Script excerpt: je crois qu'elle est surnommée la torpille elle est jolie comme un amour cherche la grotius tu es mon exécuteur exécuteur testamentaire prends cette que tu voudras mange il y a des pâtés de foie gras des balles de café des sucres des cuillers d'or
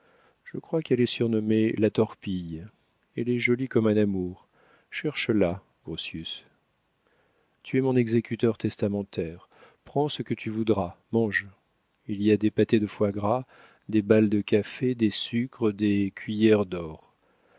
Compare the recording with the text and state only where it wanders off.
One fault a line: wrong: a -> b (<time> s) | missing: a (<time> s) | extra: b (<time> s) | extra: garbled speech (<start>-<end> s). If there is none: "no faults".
missing: exécuteur (8.6 s)
wrong: cette -> ce (10.1 s)